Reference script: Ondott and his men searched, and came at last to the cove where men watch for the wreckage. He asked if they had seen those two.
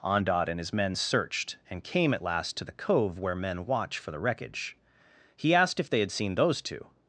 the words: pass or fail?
pass